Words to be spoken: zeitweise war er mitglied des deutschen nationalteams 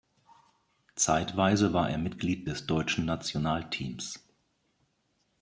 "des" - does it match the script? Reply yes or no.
yes